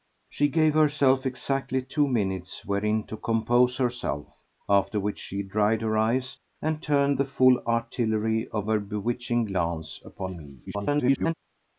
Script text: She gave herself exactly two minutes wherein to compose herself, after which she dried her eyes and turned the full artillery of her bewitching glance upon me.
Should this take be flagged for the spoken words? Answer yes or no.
yes